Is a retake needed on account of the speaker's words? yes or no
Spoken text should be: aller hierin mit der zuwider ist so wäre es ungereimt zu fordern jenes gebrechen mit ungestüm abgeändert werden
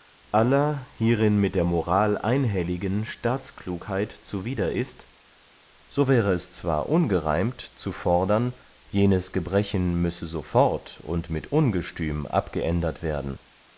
yes